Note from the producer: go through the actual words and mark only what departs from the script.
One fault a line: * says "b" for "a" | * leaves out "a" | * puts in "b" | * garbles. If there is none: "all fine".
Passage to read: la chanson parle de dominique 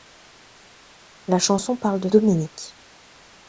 all fine